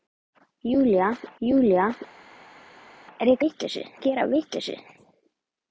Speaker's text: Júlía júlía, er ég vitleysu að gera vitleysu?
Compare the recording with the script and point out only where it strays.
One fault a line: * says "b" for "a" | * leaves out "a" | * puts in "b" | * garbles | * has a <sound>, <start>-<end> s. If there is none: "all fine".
all fine